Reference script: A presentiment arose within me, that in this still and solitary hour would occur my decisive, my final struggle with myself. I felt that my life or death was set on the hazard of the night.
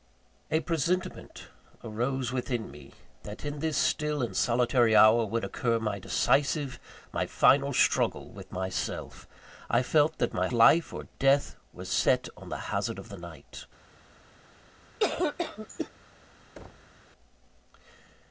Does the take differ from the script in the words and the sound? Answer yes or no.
yes